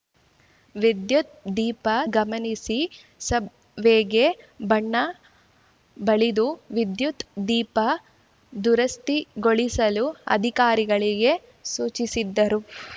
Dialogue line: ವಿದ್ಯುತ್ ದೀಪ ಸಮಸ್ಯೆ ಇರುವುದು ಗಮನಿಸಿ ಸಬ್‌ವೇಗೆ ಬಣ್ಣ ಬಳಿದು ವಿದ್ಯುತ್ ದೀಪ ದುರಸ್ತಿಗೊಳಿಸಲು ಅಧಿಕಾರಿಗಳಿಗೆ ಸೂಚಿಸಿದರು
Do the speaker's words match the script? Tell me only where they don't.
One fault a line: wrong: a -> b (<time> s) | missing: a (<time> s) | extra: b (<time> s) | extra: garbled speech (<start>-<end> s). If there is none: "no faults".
missing: ಸಮಸ್ಯೆ ಇರುವುದು (1.9 s)